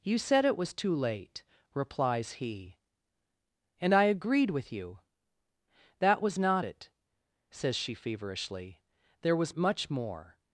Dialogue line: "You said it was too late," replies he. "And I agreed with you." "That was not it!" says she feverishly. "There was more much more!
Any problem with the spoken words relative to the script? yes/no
yes